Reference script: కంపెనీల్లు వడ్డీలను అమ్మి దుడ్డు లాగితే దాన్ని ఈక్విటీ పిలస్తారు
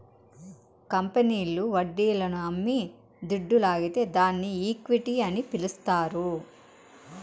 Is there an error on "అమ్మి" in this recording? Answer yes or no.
no